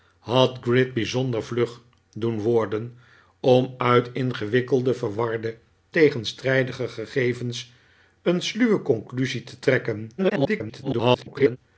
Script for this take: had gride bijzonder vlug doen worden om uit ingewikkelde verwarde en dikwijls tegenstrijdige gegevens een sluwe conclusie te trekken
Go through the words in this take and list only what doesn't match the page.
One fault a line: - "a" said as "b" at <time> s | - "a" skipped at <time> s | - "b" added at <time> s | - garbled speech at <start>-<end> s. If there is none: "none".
- "en dikwijls" skipped at 5.6 s
- garbled speech at 10.2-11.6 s